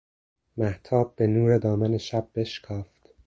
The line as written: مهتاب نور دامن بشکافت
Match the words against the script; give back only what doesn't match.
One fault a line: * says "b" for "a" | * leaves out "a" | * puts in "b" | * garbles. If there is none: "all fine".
* puts in "به"
* puts in "شب"